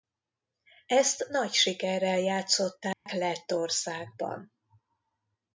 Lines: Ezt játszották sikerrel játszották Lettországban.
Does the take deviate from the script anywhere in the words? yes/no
yes